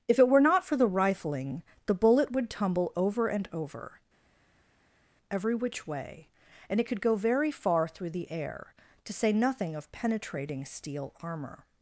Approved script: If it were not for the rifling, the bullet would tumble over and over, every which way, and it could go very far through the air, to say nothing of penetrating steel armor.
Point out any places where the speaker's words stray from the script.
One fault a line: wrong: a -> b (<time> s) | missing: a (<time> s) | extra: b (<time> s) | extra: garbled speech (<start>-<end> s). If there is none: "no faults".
no faults